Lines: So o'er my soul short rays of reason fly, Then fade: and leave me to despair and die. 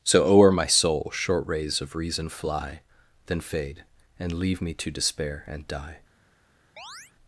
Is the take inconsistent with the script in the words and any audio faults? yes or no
yes